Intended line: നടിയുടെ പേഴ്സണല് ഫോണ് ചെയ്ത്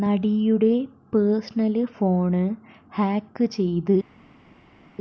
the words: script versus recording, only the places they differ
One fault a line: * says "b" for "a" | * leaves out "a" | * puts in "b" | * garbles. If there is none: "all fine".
* puts in "ഹാക്ക്"